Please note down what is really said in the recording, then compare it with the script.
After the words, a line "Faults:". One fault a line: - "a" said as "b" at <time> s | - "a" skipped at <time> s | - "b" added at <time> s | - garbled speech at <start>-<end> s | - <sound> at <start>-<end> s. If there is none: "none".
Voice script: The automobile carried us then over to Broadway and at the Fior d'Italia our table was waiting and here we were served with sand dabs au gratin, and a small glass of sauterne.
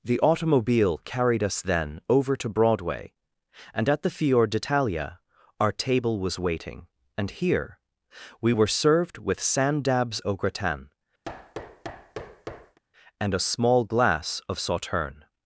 The automobile carried us then over to Broadway and at the Fior d'Italia our table was waiting and here we were served with sand dabs au gratin, and a small glass of sauterne.
Faults:
- thud at 11.2-12.8 s